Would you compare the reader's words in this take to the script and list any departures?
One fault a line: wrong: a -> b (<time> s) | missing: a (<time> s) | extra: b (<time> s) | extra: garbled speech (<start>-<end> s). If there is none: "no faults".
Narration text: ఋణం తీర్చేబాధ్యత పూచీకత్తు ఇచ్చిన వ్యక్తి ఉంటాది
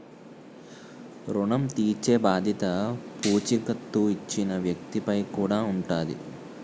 extra: పై కూడా (5.0 s)